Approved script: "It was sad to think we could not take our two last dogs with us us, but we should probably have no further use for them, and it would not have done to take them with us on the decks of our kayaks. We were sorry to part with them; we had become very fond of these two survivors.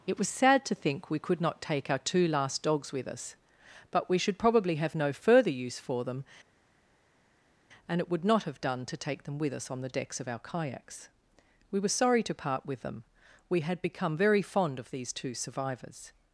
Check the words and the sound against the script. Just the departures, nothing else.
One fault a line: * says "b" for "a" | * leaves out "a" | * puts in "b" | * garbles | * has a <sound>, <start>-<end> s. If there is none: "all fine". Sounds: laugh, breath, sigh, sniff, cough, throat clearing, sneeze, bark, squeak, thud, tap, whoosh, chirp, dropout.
* leaves out "us"